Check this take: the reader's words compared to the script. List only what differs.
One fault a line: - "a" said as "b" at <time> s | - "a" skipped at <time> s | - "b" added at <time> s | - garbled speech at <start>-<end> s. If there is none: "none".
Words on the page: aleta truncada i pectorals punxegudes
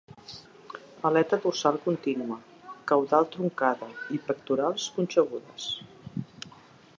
- "dorsal contínua caudal" added at 1.4 s